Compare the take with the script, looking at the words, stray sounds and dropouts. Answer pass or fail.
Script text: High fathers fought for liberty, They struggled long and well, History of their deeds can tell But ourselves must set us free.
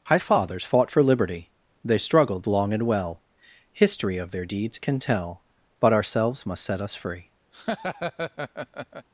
fail